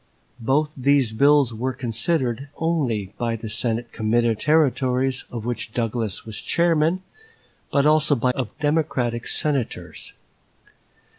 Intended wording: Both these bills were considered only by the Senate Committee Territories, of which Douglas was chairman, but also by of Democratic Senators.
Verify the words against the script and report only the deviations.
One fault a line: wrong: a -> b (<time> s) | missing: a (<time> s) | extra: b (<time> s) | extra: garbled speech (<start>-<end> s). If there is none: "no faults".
no faults